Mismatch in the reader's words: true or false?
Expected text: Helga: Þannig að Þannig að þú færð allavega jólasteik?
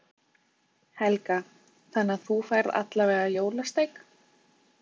true